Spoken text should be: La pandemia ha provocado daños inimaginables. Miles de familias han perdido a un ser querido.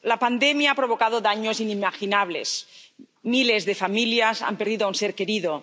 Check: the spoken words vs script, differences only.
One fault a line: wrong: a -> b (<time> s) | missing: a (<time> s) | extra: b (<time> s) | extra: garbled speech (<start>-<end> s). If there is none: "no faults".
no faults